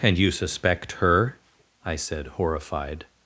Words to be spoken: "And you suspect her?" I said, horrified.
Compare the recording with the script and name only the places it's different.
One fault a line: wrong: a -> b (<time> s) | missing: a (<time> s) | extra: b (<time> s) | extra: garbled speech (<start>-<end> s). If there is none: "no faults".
no faults